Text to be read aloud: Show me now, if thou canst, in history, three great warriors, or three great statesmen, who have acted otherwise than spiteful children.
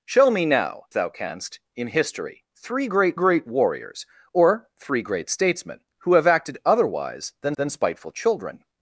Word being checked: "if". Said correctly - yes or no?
no